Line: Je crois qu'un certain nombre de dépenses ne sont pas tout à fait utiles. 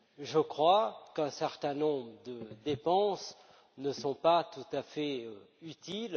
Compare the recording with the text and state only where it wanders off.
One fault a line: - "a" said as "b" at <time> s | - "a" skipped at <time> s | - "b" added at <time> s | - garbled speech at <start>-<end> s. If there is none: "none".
none